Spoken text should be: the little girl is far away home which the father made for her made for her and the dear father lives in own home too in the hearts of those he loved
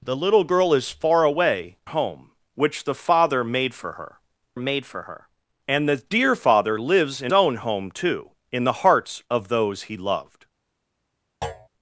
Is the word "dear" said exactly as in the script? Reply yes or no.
yes